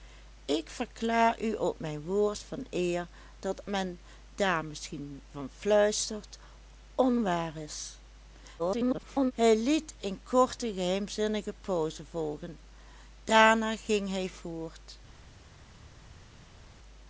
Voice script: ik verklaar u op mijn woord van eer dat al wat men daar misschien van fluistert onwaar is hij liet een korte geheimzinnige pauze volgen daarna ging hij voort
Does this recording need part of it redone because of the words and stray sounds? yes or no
yes